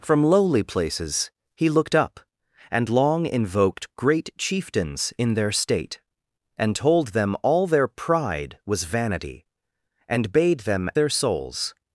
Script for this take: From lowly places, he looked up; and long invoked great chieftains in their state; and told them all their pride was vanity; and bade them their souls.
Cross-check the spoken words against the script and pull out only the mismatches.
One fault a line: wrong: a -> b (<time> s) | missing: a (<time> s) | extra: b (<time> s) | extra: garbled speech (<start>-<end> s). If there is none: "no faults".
no faults